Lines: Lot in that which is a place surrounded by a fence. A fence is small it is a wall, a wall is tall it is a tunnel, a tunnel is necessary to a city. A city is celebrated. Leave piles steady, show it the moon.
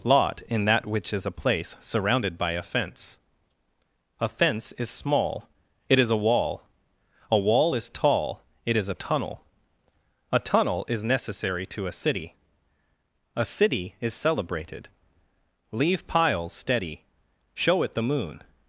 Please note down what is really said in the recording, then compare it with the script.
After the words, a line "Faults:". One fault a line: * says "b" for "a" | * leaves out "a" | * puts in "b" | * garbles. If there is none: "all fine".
Lot in that which is a place surrounded by a fence. A fence is small it is a wall, a wall is tall it is a tunnel, a tunnel is necessary to a city. A city is celebrated. Leave piles steady, show it the moon.
Faults:
all fine